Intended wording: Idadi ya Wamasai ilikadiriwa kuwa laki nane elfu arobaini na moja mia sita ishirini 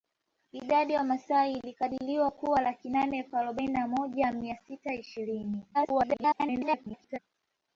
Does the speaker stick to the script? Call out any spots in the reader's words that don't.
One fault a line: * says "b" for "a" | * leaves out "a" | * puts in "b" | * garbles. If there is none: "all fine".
* garbles